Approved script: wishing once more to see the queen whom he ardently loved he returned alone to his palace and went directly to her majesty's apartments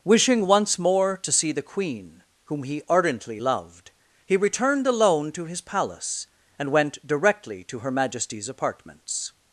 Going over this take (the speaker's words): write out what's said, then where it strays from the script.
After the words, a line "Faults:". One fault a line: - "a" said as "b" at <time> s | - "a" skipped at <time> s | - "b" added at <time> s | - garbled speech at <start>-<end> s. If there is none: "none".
wishing once more to see the queen whom he ardently loved he returned alone to his palace and went directly to her majesty's apartments
Faults:
none